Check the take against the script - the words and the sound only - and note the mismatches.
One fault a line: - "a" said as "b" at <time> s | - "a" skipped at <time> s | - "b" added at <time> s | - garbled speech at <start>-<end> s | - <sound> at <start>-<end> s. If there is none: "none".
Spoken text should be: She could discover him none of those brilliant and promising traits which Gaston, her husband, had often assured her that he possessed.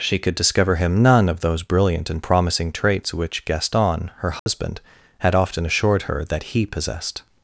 - dropout at 4.4-4.5 s